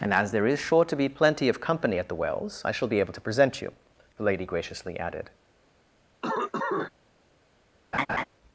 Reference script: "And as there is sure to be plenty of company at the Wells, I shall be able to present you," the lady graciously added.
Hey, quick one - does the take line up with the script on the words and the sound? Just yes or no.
no